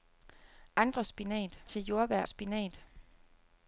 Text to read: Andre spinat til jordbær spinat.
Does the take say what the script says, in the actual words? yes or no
yes